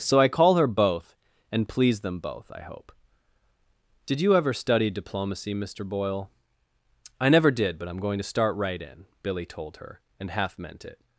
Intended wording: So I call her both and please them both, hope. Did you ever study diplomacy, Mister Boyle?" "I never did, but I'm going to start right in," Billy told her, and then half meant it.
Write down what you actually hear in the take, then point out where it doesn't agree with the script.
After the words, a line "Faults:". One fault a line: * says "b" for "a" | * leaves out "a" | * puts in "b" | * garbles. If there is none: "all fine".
So I call her both and please them both, I hope. Did you ever study diplomacy, Mister Boyle?" "I never did, but I'm going to start right in," Billy told her, and half meant it.
Faults:
* puts in "I"
* leaves out "then"